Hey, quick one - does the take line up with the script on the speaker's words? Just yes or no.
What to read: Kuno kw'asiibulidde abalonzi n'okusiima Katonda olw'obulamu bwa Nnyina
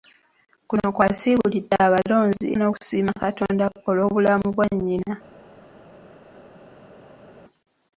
yes